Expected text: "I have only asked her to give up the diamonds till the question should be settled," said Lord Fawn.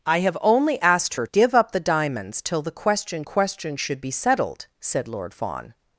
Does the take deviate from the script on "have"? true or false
false